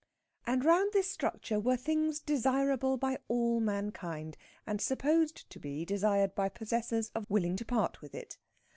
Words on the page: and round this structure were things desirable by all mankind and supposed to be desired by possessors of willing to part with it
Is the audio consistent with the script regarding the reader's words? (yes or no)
yes